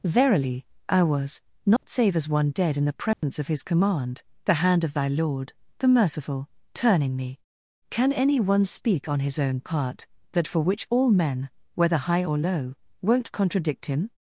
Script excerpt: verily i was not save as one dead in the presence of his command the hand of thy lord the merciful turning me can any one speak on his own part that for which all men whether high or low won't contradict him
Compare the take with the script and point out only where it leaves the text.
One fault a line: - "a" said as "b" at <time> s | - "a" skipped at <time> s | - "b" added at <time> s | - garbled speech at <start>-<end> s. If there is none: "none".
none